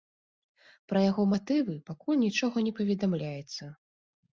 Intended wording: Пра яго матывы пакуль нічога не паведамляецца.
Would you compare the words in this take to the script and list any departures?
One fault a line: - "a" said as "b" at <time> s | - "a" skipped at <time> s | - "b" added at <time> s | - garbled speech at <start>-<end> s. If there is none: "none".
none